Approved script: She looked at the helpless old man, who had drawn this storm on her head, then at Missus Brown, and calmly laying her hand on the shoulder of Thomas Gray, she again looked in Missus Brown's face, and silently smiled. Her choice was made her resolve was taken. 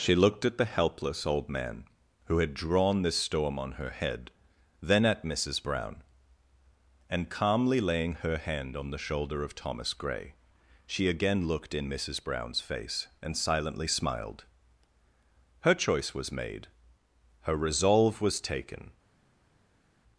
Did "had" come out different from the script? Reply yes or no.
no